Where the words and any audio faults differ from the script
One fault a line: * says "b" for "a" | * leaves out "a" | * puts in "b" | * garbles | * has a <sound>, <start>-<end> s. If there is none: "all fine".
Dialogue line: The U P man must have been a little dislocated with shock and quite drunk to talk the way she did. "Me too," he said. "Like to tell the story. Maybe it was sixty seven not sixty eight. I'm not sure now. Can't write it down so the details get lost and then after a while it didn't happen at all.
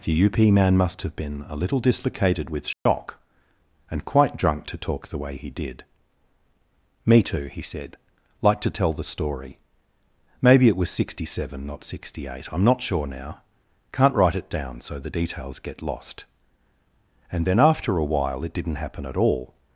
* has a dropout, 2.7-2.9 s
* says "he" for "she"